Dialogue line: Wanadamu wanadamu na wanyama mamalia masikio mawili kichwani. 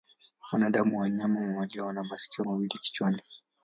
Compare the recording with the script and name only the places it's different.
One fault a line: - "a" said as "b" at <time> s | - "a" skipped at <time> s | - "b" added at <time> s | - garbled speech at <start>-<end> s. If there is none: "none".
- "wanadamu" skipped at 0.9 s
- "wana" added at 1.9 s